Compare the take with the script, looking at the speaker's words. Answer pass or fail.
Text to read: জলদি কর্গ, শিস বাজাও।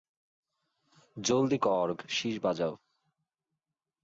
pass